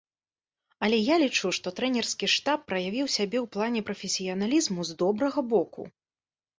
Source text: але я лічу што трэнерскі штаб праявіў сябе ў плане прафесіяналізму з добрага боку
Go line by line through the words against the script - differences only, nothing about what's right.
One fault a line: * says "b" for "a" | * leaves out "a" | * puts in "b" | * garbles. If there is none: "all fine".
all fine